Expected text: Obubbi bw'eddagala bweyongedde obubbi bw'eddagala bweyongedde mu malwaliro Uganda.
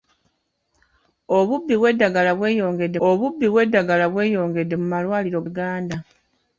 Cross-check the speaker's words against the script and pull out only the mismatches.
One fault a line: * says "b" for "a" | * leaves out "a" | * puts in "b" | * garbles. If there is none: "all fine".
all fine